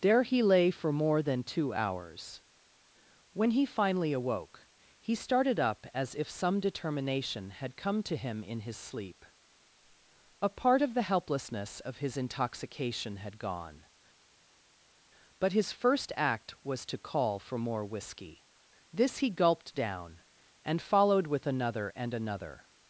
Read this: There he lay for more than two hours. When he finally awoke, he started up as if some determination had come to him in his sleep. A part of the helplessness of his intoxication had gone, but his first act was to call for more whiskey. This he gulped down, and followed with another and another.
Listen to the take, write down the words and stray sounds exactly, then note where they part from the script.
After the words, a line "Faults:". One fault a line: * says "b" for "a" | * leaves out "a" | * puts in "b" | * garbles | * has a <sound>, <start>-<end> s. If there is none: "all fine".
There he lay for more than two hours. When he finally awoke, he started up as if some determination had come to him in his sleep. A part of the helplessness of his intoxication had gone, but his first act was to call for more whiskey. This he gulped down, and followed with another and another.
Faults:
all fine